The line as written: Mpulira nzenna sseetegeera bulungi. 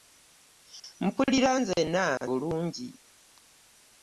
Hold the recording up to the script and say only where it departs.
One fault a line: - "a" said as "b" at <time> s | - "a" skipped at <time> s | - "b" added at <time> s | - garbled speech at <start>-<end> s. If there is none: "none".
- "sseetegeera" skipped at 2.0 s